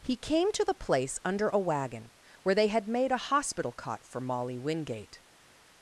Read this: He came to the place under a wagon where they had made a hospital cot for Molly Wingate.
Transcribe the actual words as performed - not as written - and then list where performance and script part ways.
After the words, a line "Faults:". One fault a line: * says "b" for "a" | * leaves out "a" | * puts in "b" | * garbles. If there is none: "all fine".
He came to the place under a wagon where they had made a hospital cot for Molly Wingate.
Faults:
all fine